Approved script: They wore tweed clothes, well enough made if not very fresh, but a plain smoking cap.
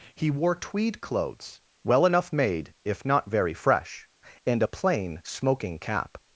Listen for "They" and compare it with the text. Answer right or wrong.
wrong